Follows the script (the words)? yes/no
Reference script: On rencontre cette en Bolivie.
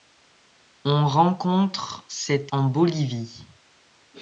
yes